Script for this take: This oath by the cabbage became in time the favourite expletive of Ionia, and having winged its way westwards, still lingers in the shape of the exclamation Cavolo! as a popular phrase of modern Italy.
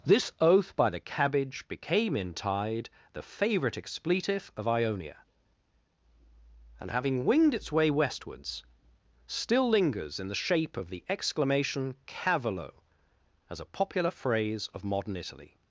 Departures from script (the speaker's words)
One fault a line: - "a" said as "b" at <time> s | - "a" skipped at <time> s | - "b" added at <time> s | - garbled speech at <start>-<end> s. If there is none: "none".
- "time" said as "tide" at 2.3 s